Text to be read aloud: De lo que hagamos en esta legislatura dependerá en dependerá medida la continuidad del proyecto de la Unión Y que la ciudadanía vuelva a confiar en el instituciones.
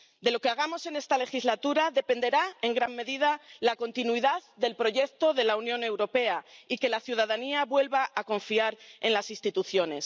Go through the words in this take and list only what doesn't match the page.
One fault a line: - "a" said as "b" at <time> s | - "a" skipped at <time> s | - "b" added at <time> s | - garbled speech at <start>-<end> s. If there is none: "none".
- "dependerá" said as "gran" at 2.8 s
- "Europea" added at 5.8 s
- "el" said as "las" at 9.1 s